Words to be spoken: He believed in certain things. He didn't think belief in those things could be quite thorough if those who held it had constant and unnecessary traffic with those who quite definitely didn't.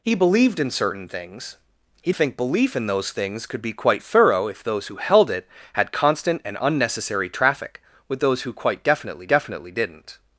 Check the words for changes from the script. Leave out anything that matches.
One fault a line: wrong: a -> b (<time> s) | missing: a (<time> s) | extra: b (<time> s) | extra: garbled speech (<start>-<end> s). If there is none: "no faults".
missing: didn't (2.1 s)
extra: definitely (9.3 s)